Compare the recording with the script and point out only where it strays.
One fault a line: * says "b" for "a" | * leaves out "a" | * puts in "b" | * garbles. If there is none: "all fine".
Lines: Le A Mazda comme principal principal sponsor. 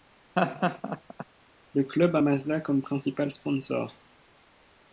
* puts in "Club"
* leaves out "principal"